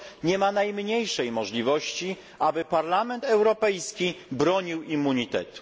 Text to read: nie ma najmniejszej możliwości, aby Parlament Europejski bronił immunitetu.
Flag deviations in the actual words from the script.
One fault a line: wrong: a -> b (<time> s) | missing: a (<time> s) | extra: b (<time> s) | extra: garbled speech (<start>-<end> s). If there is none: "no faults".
no faults